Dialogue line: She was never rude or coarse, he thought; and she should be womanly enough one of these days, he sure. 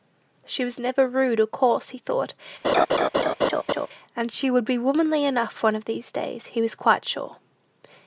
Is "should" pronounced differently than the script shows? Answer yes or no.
yes